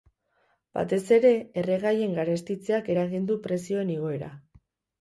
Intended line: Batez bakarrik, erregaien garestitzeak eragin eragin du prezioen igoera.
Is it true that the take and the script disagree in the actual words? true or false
true